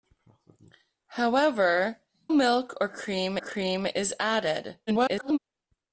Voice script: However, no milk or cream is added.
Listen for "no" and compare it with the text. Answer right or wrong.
wrong